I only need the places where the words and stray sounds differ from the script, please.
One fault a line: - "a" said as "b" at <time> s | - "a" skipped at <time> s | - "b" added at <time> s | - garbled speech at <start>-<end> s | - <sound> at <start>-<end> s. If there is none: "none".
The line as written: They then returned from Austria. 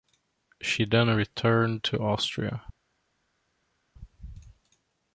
- "They" said as "She" at 0.6 s
- "from" said as "to" at 1.8 s